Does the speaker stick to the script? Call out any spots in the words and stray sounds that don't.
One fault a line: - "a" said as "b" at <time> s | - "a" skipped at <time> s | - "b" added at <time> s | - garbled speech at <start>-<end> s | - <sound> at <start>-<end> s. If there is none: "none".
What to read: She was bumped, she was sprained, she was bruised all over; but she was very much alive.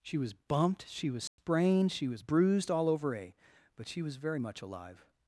- dropout at 1.3-1.4 s
- "a" added at 3.1 s